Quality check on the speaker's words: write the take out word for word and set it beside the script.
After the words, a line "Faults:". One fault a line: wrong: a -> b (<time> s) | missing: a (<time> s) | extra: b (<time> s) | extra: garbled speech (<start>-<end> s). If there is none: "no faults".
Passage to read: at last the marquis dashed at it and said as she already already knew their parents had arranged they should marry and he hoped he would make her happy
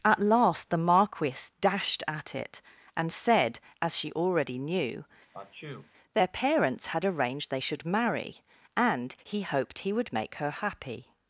at last the marquis dashed at it and said as she already knew their parents had arranged they should marry and he hoped he would make her happy
Faults:
missing: already (4.6 s)